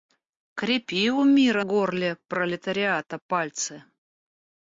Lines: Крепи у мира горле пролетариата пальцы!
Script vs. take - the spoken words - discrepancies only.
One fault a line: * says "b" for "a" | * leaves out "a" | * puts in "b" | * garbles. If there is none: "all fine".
all fine